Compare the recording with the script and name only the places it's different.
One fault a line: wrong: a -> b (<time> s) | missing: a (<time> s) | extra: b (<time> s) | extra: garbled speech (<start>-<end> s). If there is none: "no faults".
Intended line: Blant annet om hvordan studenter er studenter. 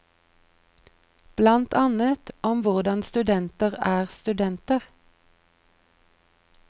no faults